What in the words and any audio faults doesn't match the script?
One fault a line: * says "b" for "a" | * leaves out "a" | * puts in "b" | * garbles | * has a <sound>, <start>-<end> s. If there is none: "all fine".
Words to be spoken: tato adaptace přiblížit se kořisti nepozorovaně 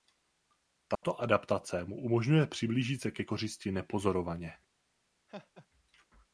* has a dropout, 1.0-1.0 s
* puts in "mu umožňuje"
* puts in "ke"
* has a laugh, 5.3-5.7 s